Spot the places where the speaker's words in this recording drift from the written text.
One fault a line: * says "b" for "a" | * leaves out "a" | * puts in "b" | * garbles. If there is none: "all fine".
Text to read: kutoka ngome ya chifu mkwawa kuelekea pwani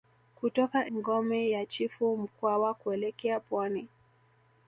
all fine